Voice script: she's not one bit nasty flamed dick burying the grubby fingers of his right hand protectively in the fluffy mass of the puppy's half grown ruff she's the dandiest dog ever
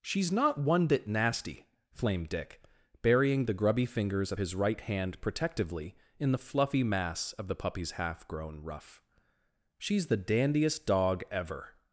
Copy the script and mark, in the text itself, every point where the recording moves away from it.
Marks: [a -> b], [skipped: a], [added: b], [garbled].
she's not one bit nasty flamed dick burying the grubby fingers of his right hand protectively in the fluffy mass of the puppy's half grown ruff she's the dandiest dog ever